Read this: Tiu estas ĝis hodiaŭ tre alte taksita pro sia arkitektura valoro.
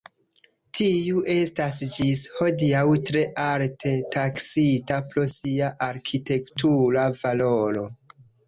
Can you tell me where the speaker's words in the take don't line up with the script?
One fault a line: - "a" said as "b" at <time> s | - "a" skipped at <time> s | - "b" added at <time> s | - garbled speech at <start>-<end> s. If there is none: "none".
none